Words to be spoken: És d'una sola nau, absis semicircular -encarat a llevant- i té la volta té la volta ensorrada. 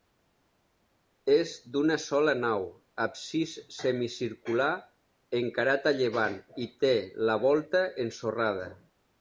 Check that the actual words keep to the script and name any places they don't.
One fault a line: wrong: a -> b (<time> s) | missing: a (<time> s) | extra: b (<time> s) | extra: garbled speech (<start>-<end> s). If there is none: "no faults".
missing: té la volta (7.9 s)